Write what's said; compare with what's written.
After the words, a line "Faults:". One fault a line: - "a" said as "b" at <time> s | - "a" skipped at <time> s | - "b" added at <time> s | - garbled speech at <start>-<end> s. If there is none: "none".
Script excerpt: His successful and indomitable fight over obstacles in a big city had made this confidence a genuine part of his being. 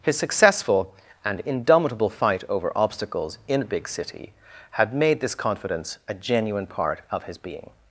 His successful and indomitable fight over obstacles in a big city had made this confidence a genuine part of his being.
Faults:
none